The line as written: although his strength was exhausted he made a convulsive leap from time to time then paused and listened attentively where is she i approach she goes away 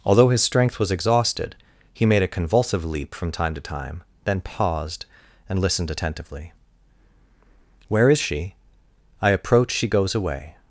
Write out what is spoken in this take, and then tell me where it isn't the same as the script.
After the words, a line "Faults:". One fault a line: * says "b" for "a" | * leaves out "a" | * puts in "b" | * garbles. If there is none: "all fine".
although his strength was exhausted he made a convulsive leap from time to time then paused and listened attentively where is she i approach she goes away
Faults:
all fine